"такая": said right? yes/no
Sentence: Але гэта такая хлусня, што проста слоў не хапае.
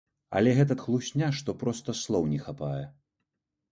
no